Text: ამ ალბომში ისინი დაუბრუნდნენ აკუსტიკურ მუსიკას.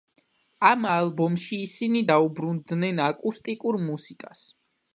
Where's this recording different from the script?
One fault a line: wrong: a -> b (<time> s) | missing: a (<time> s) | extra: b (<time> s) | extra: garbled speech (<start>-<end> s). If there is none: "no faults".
no faults